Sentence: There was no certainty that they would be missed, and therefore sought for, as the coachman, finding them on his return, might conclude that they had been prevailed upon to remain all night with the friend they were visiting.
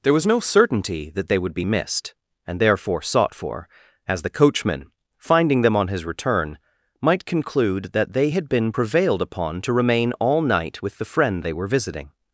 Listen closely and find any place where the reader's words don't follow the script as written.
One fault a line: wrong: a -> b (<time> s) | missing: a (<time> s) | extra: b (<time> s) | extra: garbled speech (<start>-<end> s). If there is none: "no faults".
no faults